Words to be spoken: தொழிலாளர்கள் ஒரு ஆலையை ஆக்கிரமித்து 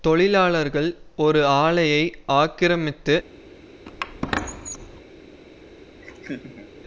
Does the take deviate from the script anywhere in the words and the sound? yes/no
yes